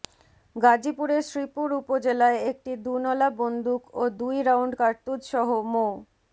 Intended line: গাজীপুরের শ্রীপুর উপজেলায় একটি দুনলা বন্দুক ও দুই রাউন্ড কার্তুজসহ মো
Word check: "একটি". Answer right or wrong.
right